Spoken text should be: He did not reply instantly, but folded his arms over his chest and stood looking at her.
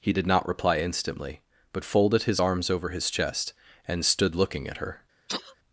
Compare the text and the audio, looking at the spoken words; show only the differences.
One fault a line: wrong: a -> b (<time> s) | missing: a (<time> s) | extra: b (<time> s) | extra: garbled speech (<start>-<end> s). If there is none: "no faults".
no faults